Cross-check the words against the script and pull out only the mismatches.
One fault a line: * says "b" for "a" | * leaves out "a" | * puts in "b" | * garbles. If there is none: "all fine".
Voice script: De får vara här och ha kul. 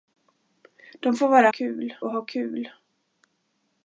* says "kul" for "här"